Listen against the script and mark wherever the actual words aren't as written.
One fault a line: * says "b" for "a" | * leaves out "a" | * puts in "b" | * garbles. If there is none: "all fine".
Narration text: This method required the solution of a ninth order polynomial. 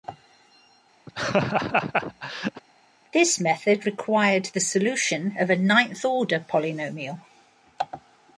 all fine